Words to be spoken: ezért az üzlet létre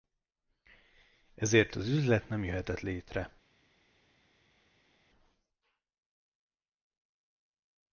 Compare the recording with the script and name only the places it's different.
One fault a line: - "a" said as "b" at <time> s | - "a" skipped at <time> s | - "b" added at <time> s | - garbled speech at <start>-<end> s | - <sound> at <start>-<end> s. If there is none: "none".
- "nem jöhetett" added at 2.3 s